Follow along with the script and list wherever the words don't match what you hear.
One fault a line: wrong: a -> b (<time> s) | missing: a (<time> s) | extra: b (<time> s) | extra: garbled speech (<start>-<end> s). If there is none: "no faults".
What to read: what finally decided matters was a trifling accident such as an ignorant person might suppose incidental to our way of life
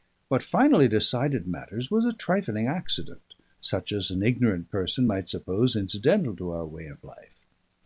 no faults